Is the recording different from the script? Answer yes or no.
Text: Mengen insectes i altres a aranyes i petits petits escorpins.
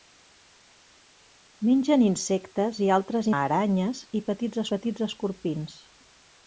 no